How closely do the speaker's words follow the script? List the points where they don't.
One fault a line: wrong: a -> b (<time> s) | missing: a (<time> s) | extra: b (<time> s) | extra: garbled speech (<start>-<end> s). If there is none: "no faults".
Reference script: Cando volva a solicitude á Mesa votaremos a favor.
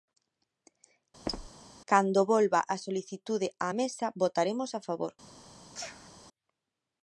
no faults